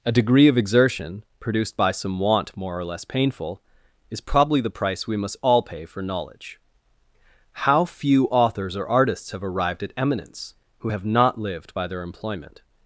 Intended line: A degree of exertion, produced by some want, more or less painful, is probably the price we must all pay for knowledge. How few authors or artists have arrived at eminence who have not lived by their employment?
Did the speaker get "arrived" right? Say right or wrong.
right